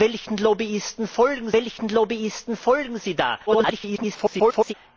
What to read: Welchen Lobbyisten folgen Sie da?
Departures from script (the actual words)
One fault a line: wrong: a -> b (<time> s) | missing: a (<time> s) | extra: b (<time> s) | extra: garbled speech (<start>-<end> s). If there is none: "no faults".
extra: welchen Lobbyisten folgen (1.5 s)
extra: garbled speech (3.5-4.7 s)